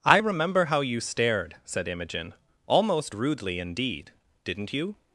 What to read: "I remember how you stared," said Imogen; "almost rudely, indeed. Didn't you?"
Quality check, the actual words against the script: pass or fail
pass